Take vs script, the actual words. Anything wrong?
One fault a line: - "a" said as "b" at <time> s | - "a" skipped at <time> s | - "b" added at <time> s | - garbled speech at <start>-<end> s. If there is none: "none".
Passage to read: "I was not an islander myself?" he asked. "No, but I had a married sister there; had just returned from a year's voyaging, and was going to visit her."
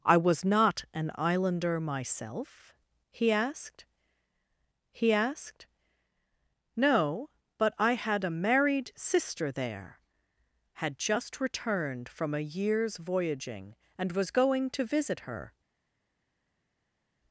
- "he asked" added at 4.9 s